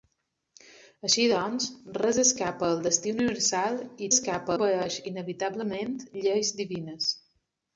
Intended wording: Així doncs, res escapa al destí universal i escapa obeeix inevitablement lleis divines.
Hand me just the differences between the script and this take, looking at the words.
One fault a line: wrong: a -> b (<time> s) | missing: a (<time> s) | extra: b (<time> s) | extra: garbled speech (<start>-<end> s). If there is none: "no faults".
no faults